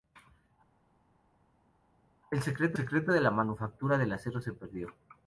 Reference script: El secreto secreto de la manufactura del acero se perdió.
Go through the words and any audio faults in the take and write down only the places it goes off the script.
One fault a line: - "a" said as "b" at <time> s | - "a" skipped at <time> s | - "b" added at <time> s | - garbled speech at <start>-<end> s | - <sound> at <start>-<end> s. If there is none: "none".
none